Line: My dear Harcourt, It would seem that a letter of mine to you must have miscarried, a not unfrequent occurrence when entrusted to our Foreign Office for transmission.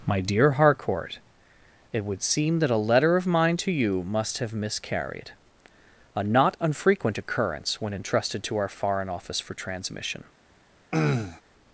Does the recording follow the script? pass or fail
pass